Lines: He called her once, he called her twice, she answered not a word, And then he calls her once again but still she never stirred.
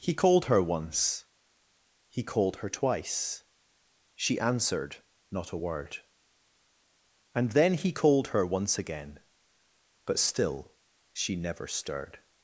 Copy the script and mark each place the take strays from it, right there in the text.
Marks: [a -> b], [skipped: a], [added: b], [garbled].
He called her once, he called her twice, she answered not a word, And then he [calls -> called] her once again but still she never stirred.